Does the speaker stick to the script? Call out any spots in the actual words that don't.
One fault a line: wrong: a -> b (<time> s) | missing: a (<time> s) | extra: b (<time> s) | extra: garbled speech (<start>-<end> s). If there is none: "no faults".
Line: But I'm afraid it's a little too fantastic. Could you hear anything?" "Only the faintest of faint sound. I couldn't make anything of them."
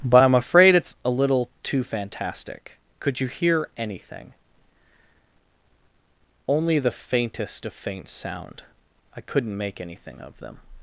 no faults